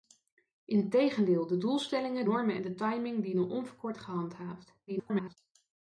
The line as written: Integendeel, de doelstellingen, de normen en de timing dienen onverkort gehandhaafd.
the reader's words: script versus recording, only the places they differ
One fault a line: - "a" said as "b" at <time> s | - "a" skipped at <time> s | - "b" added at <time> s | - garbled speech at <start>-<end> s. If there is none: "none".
- "de" skipped at 2.2 s
- garbled speech at 4.9-5.4 s